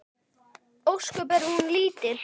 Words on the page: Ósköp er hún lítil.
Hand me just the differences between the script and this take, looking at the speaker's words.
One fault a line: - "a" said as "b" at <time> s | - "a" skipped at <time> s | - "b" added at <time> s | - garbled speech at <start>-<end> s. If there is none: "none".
none